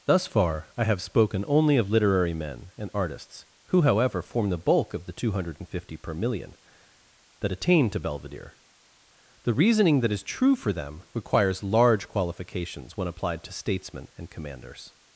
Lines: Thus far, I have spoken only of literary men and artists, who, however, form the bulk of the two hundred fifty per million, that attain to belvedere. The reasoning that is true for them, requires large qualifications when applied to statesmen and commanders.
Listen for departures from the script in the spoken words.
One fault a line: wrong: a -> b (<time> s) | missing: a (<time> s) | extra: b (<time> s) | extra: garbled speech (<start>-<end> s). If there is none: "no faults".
no faults